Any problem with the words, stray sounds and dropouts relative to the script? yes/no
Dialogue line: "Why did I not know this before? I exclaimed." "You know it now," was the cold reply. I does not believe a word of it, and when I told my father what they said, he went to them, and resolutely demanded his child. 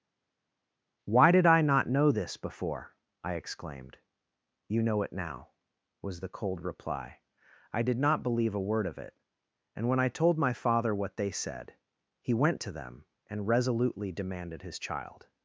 yes